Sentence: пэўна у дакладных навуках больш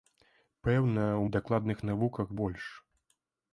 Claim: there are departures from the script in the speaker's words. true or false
false